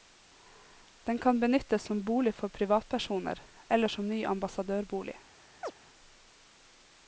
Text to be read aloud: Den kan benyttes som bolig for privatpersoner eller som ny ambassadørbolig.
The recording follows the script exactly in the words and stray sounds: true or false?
false